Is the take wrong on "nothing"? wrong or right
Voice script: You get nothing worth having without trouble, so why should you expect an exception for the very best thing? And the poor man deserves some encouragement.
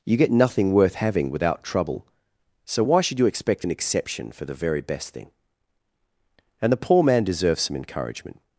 right